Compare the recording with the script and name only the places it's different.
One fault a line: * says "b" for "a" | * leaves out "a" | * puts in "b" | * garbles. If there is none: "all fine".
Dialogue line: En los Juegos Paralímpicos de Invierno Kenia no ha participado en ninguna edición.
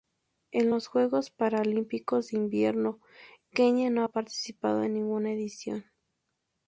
all fine